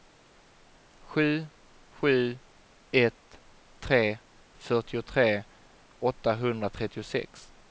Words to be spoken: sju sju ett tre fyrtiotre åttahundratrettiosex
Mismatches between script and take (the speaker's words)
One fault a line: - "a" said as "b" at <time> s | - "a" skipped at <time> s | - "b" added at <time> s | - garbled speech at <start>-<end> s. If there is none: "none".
none